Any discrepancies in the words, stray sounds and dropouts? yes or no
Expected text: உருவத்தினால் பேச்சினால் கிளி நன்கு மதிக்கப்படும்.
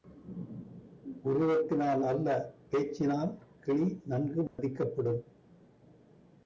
yes